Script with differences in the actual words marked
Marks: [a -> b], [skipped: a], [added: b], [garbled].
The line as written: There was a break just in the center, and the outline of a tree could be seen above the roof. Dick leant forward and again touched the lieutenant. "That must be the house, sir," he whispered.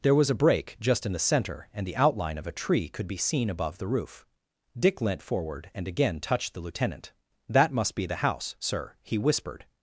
There was a break just in the center, and the outline of a tree could be seen above the roof. Dick leant forward and again touched the lieutenant. "That must be the house, sir," he whispered.